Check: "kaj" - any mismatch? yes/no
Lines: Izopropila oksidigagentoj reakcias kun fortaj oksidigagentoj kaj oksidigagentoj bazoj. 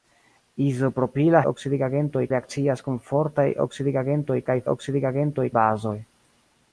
no